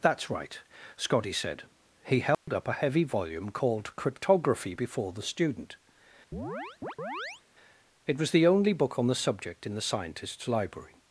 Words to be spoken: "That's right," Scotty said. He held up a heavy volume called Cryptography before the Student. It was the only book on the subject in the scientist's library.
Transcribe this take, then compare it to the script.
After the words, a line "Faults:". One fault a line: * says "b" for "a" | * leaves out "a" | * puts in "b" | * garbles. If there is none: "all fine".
"That's right," Scotty said. He held up a heavy volume called Cryptography before the Student. It was the only book on the subject in the scientist's library.
Faults:
all fine